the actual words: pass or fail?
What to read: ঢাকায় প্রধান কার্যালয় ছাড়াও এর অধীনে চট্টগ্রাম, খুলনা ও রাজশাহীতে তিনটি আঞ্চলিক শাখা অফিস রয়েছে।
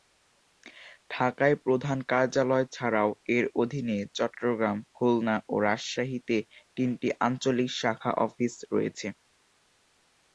pass